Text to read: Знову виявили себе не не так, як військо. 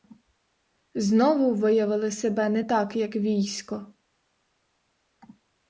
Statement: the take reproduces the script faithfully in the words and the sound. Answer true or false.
false